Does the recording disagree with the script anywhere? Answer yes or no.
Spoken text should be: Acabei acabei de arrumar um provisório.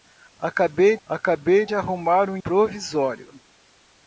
no